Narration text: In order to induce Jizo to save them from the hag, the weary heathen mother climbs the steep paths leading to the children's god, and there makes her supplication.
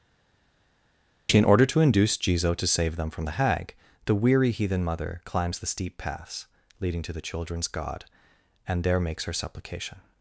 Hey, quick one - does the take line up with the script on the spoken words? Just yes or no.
yes